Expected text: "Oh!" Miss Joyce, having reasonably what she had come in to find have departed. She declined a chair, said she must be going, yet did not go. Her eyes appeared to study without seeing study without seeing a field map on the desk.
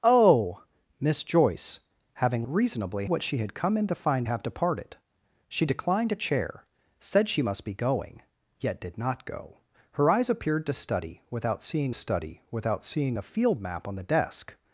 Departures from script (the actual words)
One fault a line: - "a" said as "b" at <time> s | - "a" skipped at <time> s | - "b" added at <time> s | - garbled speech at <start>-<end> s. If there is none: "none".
none